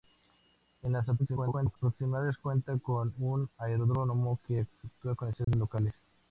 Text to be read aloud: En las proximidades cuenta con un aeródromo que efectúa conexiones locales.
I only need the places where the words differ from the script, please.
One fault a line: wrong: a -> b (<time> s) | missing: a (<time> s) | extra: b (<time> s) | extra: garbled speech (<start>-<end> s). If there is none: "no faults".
extra: garbled speech (1.2-1.8 s)